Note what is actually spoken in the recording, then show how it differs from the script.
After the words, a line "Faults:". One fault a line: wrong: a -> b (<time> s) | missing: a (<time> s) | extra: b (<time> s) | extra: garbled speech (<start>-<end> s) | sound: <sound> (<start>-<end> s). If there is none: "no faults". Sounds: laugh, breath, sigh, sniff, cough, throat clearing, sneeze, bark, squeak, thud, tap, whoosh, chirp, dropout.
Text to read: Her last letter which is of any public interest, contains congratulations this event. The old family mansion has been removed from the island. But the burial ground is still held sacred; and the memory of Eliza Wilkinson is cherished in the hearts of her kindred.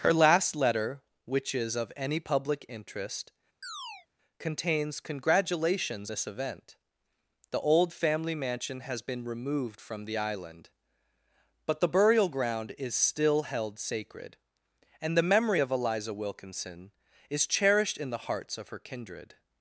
Her last letter which is of any public interest, contains congratulations this event. The old family mansion has been removed from the island. But the burial ground is still held sacred; and the memory of Eliza Wilkinson is cherished in the hearts of her kindred.
Faults:
sound: chirp (3.6-4.1 s)